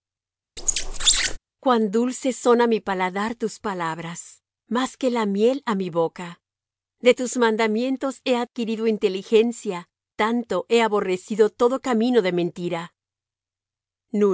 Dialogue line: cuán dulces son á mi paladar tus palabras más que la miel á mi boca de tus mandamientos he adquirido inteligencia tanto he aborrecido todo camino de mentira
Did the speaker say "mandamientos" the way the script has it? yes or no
yes